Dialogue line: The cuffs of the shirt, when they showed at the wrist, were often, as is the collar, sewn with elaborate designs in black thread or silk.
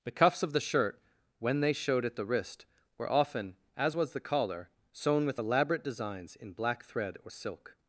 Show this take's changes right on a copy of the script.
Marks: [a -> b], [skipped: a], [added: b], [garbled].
The cuffs of the shirt, when they showed at the wrist, were often, as [is -> was] the collar, sewn with elaborate designs in black thread or silk.